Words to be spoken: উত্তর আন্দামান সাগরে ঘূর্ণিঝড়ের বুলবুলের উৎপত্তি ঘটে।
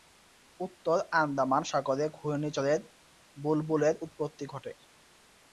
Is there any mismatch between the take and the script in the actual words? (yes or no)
no